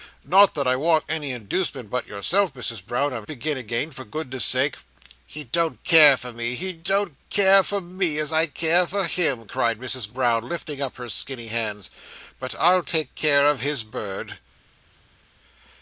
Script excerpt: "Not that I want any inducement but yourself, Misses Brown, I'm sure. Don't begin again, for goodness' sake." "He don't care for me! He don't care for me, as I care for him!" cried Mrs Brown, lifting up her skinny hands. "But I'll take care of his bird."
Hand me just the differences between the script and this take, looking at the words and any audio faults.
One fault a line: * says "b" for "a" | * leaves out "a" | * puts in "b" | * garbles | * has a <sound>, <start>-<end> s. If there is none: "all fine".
* leaves out "sure Don't"